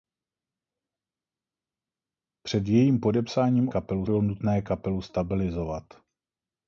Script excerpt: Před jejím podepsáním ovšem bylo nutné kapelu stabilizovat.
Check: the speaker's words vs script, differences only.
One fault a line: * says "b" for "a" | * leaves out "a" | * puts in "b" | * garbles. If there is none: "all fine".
* says "kapelu" for "ovšem"